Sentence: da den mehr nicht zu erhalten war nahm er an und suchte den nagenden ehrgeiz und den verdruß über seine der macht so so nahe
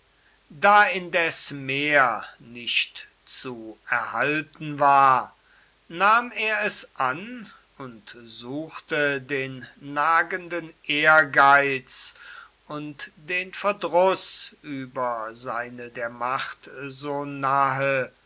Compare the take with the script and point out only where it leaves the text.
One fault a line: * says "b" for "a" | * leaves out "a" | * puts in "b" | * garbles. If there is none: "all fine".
* says "indes" for "den"
* puts in "es"
* leaves out "so"